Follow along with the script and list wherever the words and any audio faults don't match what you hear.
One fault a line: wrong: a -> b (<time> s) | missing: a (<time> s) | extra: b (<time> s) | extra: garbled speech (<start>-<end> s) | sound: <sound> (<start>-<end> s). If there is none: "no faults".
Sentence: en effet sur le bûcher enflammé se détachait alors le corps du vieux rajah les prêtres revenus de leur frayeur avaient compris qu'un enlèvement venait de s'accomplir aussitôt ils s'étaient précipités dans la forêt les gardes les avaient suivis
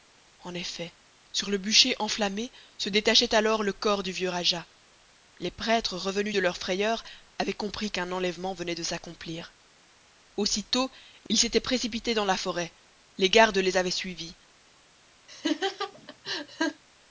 sound: laugh (15.3-16.8 s)